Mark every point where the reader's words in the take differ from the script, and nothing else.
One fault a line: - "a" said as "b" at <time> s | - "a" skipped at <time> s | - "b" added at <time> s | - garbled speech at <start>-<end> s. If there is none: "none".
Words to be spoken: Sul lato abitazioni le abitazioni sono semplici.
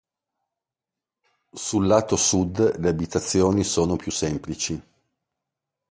- "abitazioni" said as "sud" at 2.1 s
- "più" added at 4.0 s